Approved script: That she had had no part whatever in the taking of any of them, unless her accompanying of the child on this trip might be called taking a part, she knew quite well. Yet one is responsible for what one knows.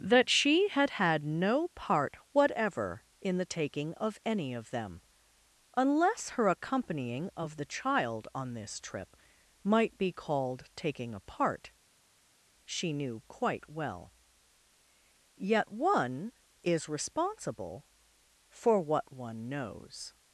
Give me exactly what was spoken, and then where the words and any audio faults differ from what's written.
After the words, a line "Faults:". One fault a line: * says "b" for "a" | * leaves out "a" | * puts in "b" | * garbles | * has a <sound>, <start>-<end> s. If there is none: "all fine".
That she had had no part whatever in the taking of any of them, unless her accompanying of the child on this trip might be called taking a part, she knew quite well. Yet one is responsible for what one knows.
Faults:
all fine